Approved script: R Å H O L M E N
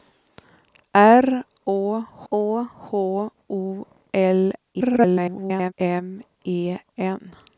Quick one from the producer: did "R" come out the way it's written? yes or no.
yes